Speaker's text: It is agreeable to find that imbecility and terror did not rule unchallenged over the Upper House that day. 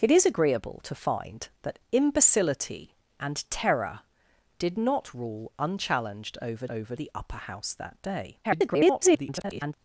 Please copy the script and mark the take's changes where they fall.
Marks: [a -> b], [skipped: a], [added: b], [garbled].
It is agreeable to find that imbecility and terror did not rule unchallenged over [added: over] the Upper House that day. [garbled]